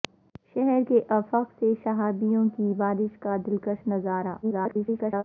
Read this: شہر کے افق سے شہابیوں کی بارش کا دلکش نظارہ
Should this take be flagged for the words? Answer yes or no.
yes